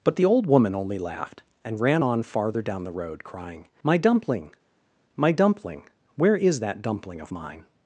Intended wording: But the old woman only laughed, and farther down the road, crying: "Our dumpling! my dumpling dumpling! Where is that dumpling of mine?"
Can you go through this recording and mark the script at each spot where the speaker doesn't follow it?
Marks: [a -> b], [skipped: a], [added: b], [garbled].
But the old woman only laughed, and [added: ran on] farther down the road, crying: ["Our -> My] dumpling! my dumpling [skipped: dumpling!] Where is that dumpling of mine?"